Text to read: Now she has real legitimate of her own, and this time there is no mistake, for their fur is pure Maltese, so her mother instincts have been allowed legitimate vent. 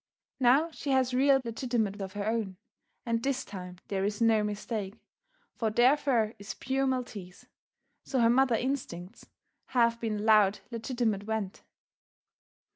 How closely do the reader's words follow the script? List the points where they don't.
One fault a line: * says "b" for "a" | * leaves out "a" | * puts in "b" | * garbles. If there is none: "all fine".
all fine